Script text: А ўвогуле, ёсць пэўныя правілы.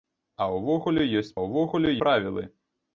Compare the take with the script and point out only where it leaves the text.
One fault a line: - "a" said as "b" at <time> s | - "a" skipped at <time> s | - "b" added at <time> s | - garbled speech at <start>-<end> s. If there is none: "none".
- "пэўныя" said as "ўвогуле" at 1.4 s